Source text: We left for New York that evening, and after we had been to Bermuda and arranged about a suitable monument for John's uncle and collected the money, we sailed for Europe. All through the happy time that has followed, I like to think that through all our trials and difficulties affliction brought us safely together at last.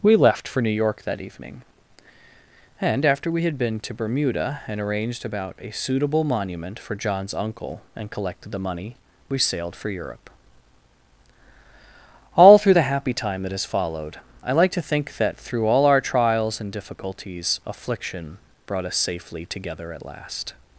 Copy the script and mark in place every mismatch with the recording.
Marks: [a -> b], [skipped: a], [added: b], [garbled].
We left for New York that evening, and after we had been to Bermuda and arranged about a suitable monument for John's uncle and collected the money, we sailed for Europe. All through the happy time that has followed, I like to think that through all our trials and difficulties affliction brought us safely together at last.